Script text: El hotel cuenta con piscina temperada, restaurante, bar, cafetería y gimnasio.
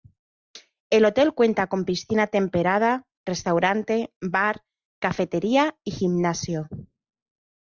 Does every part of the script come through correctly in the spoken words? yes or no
yes